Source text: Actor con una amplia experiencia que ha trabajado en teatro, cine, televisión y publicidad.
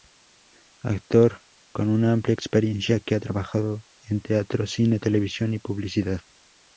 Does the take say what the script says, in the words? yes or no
yes